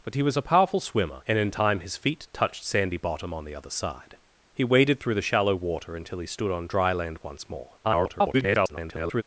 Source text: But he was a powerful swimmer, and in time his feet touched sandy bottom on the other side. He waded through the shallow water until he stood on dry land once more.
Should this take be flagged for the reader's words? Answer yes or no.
yes